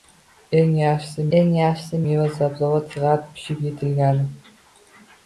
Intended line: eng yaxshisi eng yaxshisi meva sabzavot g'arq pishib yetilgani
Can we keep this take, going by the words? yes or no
yes